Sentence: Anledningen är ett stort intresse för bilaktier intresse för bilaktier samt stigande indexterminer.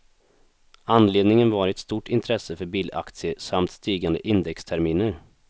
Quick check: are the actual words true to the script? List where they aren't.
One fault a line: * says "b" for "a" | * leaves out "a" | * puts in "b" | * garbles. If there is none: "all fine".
* says "var" for "är"
* leaves out "intresse för bilaktier"